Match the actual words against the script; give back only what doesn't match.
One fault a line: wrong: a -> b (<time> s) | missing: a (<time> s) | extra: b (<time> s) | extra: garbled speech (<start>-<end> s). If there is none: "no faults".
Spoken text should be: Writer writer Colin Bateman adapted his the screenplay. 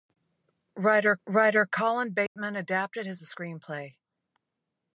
no faults